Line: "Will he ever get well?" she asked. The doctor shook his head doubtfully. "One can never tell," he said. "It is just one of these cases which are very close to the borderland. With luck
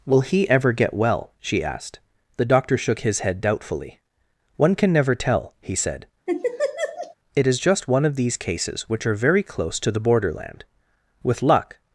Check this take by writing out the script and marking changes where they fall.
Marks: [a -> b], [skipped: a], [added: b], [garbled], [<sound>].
"Will he ever get well?" she asked. The doctor shook his head doubtfully. "One can never tell," he said. [laugh] "It is just one of these cases which are very close to the borderland. With luck